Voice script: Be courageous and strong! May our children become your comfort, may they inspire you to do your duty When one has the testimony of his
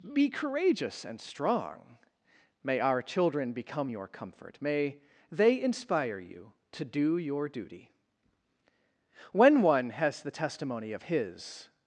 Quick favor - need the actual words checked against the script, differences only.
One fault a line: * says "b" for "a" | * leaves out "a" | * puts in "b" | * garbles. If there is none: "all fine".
all fine